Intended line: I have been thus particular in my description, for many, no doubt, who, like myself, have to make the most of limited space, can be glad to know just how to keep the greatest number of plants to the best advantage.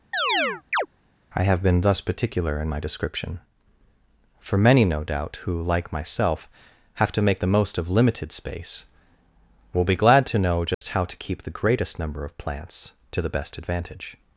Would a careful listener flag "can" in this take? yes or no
yes